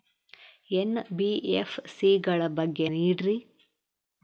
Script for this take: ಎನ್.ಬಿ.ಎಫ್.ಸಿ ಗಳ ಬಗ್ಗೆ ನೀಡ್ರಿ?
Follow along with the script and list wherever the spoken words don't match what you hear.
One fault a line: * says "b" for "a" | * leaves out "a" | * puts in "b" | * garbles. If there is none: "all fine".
all fine